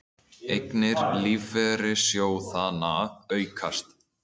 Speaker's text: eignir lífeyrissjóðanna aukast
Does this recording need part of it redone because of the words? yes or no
no